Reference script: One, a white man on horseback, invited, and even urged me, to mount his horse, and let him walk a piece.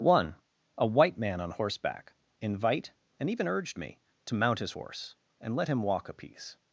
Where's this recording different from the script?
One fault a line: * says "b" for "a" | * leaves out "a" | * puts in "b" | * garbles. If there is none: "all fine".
* says "invite" for "invited"